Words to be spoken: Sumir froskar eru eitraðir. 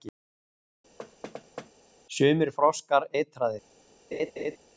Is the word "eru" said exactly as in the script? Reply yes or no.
no